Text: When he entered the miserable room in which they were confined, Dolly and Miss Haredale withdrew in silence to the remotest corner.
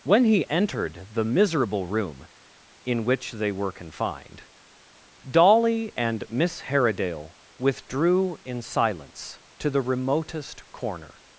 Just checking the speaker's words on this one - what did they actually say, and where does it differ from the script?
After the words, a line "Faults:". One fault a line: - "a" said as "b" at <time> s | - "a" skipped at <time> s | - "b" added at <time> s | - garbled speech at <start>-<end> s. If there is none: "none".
When he entered the miserable room in which they were confined, Dolly and Miss Haredale withdrew in silence to the remotest corner.
Faults:
none